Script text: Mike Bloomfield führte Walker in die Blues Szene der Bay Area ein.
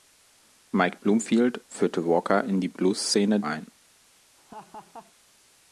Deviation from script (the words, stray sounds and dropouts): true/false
true